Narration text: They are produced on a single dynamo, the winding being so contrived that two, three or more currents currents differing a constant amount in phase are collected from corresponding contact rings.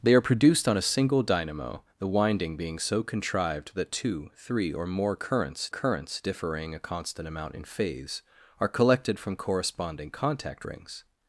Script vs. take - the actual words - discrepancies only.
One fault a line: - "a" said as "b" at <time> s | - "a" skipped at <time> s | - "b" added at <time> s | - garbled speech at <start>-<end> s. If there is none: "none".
none